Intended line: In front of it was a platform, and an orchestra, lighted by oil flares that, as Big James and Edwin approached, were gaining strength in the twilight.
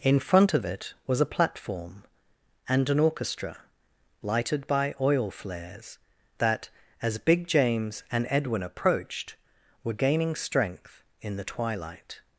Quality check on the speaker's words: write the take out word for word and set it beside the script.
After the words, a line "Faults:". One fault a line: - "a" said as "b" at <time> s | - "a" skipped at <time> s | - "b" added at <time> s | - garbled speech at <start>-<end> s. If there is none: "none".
In front of it was a platform, and an orchestra, lighted by oil flares that, as Big James and Edwin approached, were gaining strength in the twilight.
Faults:
none